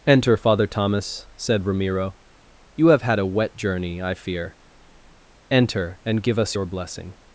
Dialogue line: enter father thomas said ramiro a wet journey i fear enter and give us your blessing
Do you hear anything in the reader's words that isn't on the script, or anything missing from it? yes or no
yes